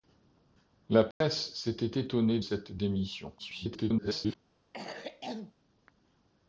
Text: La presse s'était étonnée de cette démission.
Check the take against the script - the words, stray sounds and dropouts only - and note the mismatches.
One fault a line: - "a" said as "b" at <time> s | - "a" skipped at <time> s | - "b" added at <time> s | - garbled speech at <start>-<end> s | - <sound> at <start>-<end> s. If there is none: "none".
- dropout at 1.1-1.2 s
- "de" skipped at 2.4 s
- garbled speech at 3.4-4.4 s
- cough at 4.7-5.5 s